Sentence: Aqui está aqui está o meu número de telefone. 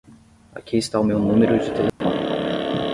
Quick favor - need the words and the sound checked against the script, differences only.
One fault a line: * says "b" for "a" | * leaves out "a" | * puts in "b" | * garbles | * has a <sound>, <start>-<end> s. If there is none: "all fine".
* leaves out "aqui está"
* has a dropout, 1.9-2.0 s